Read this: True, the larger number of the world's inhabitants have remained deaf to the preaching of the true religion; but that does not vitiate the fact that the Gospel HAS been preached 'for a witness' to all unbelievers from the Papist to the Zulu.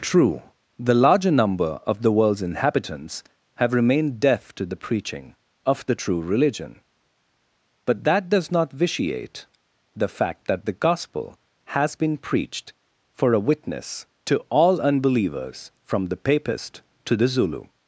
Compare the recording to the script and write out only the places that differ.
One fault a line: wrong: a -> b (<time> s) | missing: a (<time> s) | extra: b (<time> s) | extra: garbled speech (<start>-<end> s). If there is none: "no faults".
no faults